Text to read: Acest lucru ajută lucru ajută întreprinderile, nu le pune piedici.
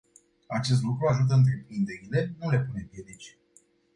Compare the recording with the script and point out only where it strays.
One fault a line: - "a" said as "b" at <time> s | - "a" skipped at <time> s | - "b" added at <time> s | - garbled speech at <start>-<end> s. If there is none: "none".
- "lucru ajută" skipped at 1.3 s